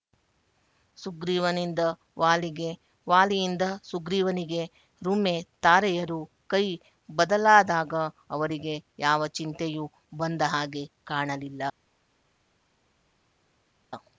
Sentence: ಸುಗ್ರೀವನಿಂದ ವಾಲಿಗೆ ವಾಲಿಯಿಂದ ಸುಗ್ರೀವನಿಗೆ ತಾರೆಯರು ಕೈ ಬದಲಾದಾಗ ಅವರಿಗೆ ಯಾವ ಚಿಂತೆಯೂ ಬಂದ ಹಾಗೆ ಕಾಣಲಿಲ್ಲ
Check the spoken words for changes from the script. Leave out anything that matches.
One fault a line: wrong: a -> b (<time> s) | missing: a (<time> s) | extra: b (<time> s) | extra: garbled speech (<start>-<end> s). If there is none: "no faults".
extra: ರುಮೆ (5.0 s)